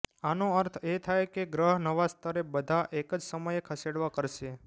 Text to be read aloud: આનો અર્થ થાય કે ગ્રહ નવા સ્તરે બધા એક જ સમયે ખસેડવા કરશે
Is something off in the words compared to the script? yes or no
yes